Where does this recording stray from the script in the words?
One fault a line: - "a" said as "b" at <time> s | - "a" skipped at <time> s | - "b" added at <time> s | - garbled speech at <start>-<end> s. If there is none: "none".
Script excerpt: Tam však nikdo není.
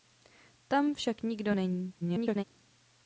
- garbled speech at 2.0-2.4 s